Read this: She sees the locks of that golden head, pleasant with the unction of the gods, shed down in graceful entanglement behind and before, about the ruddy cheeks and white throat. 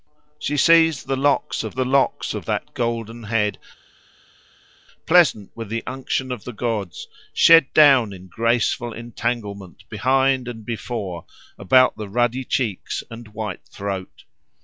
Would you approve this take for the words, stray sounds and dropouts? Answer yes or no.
no